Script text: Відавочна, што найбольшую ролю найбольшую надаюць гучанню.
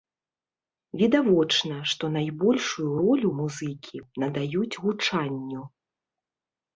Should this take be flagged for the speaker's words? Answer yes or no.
yes